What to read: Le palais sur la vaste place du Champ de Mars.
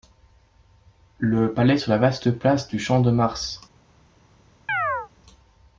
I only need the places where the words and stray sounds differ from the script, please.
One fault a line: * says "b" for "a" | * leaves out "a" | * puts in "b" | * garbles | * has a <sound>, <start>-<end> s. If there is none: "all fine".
* has a chirp, 4.7-5.1 s